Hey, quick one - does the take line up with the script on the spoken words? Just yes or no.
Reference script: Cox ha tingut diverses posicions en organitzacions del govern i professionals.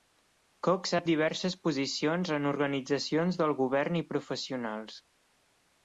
no